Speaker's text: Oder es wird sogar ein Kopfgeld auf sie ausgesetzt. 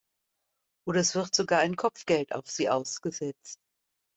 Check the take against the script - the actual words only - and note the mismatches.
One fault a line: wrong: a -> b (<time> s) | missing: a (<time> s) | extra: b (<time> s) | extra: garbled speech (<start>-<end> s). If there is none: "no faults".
no faults